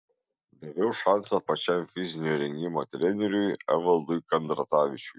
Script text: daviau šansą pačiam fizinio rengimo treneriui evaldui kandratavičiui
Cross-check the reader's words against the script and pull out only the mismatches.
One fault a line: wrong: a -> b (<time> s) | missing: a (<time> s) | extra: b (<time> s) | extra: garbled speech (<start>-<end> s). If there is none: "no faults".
no faults